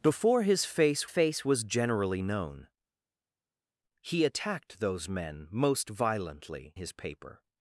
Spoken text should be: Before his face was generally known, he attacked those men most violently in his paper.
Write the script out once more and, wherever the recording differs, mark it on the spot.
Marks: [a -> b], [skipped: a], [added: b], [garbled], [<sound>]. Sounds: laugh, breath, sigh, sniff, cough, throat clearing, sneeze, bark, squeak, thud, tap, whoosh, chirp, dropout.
Before his face [added: face] was generally known, he attacked those men most violently [skipped: in] his paper.